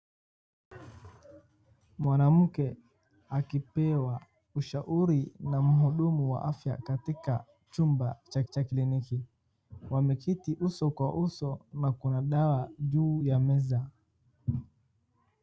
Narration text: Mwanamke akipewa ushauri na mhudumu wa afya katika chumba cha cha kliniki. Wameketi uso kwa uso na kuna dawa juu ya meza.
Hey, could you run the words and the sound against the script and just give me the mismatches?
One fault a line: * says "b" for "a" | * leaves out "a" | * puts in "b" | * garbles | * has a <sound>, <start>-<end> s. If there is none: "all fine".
all fine